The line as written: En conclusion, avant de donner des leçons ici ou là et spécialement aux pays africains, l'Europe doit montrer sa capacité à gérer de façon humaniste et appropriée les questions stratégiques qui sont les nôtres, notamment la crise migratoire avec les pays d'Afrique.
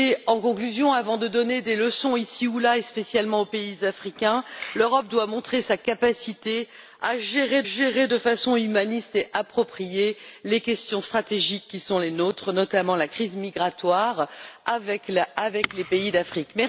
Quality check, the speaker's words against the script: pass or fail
fail